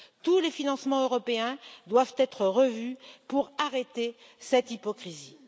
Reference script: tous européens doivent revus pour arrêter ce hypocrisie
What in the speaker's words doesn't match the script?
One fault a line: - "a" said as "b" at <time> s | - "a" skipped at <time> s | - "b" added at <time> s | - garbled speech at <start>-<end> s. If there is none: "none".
- "les financements" added at 0.4 s
- "être" added at 2.2 s
- "ce" said as "cette" at 4.4 s